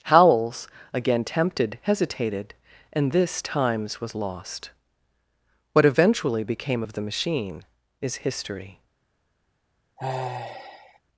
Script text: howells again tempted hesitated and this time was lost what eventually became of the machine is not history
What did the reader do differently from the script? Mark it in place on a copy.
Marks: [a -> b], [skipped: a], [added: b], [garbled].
howells again tempted hesitated and this [time -> times] was lost what eventually became of the machine is [skipped: not] history